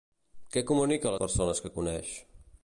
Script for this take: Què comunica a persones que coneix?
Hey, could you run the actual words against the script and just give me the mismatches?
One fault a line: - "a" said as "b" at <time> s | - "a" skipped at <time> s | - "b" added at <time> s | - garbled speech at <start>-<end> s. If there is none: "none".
none